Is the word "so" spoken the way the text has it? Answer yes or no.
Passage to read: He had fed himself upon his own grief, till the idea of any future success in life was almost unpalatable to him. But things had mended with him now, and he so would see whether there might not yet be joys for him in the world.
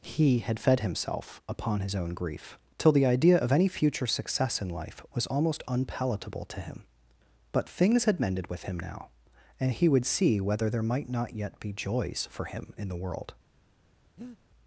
no